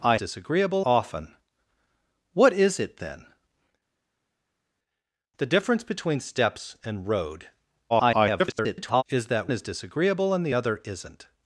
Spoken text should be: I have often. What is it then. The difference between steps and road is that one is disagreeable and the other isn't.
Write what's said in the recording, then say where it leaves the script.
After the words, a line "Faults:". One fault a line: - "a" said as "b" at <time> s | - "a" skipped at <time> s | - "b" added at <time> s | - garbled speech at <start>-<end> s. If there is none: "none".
I disagreeable often. What is it then. The difference between steps and road [garbled] is that is disagreeable and the other isn't.
Faults:
- "have" said as "disagreeable" at 0.1 s
- garbled speech at 7.9-9.0 s
- "one" skipped at 9.5 s